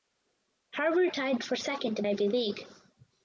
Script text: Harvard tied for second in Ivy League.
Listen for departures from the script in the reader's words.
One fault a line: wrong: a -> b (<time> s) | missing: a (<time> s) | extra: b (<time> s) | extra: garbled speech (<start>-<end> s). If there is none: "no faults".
no faults